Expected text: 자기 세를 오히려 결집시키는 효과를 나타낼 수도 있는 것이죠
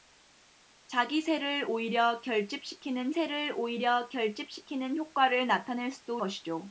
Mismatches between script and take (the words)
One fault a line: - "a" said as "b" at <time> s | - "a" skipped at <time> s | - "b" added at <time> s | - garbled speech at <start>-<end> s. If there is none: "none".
- "세를 오히려 결집시키는" added at 3.1 s
- "있는" skipped at 6.2 s